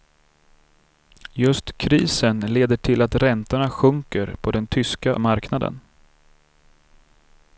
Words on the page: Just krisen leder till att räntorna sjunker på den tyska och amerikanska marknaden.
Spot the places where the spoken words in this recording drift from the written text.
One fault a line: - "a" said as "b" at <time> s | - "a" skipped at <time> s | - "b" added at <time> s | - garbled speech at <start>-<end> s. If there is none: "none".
- "och amerikanska" skipped at 5.2 s